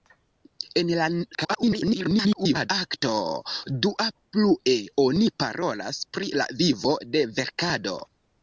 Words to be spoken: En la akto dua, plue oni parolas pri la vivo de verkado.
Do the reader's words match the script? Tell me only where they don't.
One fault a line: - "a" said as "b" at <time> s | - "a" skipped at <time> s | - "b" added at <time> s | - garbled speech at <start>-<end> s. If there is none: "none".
- garbled speech at 1.3-2.7 s